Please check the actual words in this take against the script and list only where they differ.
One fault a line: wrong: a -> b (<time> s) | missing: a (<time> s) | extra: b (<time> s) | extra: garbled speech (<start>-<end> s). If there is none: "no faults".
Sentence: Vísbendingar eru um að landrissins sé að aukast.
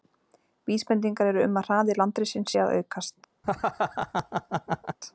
extra: hraði (1.7 s)